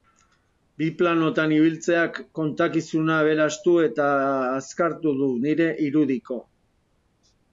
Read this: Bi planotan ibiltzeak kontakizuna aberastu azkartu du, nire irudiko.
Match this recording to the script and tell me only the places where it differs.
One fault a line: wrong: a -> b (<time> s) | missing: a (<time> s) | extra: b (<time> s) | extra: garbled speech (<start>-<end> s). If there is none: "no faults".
extra: eta (3.9 s)